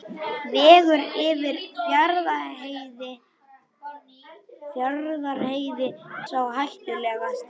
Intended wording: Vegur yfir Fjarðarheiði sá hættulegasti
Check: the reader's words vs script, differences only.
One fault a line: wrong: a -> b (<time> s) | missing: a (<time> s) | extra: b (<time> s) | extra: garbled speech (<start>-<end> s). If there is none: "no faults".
no faults